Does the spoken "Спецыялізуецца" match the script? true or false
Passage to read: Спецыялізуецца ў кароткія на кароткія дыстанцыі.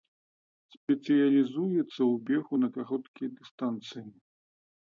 true